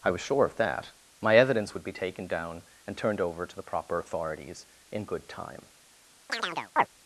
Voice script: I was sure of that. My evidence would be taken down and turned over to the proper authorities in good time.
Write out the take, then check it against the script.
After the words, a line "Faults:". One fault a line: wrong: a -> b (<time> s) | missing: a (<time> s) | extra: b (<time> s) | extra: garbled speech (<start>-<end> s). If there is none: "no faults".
I was sure of that. My evidence would be taken down and turned over to the proper authorities in good time.
Faults:
no faults